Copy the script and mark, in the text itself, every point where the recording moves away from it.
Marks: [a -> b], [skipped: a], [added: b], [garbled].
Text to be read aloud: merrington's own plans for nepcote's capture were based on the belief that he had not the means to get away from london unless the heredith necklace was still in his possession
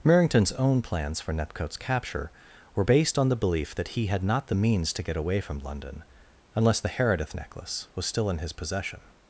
merrington's own plans for nepcote's capture were based on the belief that he had not the means to get away from london unless the heredith necklace was still in his possession